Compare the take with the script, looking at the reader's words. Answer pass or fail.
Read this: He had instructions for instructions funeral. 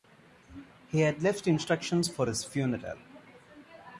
fail